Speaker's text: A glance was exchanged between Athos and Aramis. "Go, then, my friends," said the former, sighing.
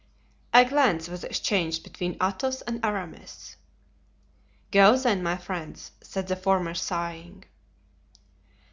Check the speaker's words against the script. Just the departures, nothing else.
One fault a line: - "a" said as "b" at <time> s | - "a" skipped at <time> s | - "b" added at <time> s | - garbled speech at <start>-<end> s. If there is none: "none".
none